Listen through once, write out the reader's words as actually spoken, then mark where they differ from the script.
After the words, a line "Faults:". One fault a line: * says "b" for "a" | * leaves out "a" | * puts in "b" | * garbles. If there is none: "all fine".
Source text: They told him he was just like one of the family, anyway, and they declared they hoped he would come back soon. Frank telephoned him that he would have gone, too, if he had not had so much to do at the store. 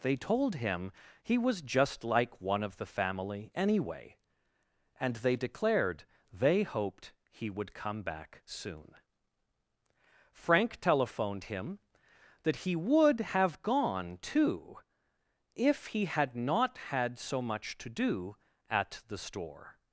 They told him he was just like one of the family, anyway, and they declared they hoped he would come back soon. Frank telephoned him that he would have gone, too, if he had not had so much to do at the store.
Faults:
all fine